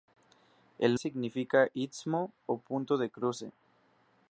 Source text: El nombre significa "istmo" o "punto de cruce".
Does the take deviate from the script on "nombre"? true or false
true